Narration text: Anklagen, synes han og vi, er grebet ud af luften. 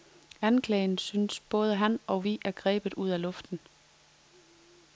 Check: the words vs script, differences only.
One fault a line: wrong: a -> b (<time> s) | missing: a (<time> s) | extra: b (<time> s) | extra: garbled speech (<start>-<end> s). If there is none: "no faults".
extra: både (1.4 s)